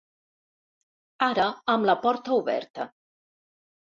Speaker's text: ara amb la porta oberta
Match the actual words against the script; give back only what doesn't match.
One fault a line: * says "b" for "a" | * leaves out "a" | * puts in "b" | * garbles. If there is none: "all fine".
all fine